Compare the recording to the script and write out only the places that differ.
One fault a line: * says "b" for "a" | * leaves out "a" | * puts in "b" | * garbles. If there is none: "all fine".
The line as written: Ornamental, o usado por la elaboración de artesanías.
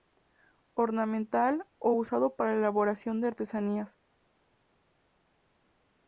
* says "para" for "por"